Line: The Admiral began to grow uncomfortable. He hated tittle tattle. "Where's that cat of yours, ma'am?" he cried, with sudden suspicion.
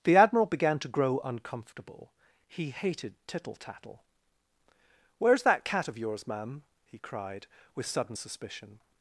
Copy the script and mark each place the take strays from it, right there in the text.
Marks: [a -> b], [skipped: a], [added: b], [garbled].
The Admiral began to grow uncomfortable. He hated tittle tattle. "Where's that cat of yours, ma'am?" he cried, with sudden suspicion.